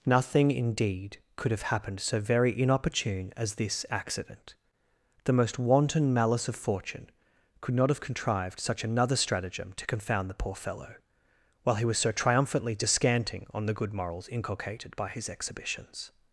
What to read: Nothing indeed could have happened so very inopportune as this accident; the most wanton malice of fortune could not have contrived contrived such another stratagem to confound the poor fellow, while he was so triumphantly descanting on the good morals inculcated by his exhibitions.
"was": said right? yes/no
yes